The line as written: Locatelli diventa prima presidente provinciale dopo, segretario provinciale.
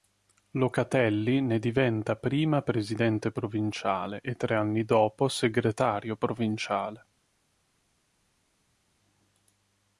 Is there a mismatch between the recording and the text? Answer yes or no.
yes